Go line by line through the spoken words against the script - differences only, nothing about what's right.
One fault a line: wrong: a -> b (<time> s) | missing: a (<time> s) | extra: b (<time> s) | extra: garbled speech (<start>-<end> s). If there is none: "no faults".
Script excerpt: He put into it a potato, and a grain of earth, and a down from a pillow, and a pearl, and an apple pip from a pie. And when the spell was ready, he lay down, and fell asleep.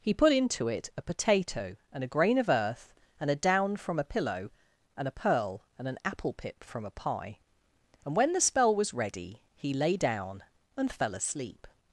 no faults